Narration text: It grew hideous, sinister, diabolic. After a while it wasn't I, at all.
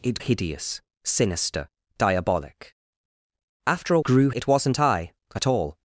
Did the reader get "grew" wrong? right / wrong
wrong